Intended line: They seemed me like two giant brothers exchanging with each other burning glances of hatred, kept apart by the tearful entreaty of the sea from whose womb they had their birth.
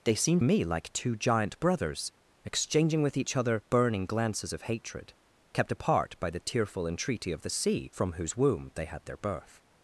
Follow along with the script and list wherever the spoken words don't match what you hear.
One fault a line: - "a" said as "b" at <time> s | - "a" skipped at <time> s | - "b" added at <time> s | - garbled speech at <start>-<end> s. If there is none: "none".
none